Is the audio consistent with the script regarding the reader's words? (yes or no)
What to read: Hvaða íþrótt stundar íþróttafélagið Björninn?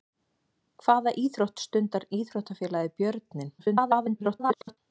no